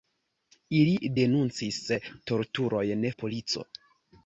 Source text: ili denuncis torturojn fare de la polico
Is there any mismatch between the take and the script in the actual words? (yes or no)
yes